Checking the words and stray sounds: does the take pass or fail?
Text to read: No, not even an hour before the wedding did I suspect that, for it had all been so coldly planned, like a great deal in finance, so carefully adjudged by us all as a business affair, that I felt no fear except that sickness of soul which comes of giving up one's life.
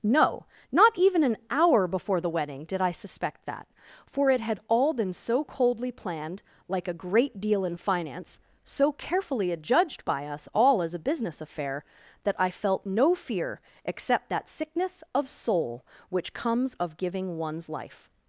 fail